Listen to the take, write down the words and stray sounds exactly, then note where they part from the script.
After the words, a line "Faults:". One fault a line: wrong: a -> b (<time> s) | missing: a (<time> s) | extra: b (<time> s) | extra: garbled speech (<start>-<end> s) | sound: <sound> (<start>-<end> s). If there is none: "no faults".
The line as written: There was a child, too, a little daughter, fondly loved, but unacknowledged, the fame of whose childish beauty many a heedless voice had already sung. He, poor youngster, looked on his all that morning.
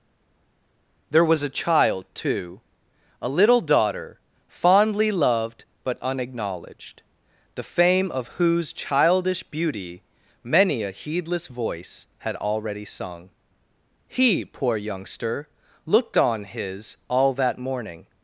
There was a child, too, a little daughter, fondly loved, but unacknowledged, the fame of whose childish beauty many a heedless voice had already sung. He, poor youngster, looked on his all that morning.
Faults:
no faults